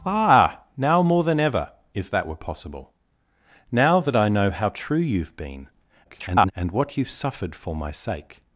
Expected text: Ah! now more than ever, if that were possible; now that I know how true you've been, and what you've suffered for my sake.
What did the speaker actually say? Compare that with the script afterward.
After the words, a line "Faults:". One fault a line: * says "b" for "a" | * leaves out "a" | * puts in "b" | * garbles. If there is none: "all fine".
Ah! now more than ever, if that were possible; now that I know how true you've been, [garbled] and what you've suffered for my sake.
Faults:
* garbles